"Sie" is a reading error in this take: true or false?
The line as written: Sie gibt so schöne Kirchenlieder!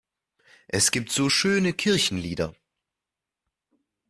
true